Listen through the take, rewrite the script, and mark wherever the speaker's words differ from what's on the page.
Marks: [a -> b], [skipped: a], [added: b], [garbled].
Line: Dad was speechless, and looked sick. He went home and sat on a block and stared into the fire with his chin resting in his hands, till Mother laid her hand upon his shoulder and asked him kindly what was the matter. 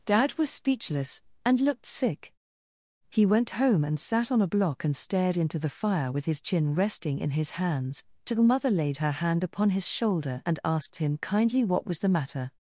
Dad was speechless, and looked sick. He went home and sat on a block and stared into the fire with his chin resting in his hands, till Mother laid her hand upon his shoulder and asked him kindly what was the matter.